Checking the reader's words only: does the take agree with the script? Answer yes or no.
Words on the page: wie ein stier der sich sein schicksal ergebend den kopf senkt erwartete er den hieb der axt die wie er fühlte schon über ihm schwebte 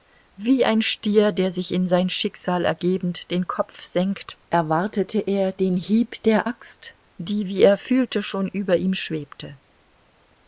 no